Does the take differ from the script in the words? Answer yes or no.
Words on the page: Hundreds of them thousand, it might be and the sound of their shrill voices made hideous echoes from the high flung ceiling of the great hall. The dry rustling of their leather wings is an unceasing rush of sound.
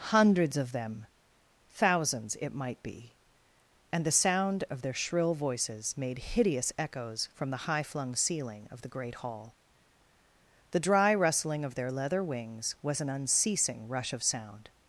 yes